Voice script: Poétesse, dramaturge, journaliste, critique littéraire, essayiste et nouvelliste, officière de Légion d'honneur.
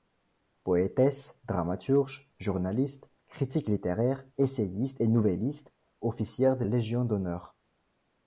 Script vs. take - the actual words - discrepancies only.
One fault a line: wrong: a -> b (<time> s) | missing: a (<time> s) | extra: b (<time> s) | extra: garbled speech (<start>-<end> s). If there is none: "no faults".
no faults